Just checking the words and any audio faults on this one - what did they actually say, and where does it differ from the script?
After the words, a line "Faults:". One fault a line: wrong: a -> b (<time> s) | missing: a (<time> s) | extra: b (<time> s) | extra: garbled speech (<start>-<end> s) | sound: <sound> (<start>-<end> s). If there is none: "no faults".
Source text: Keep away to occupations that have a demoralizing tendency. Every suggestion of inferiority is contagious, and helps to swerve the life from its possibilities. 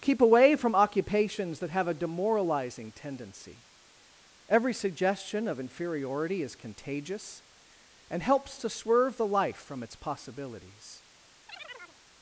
Keep away from occupations that have a demoralizing tendency. Every suggestion of inferiority is contagious, and helps to swerve the life from its possibilities.
Faults:
wrong: to -> from (0.6 s)
sound: chirp (11.5-12.0 s)